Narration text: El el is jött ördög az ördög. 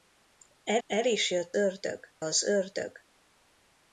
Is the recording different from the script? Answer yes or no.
no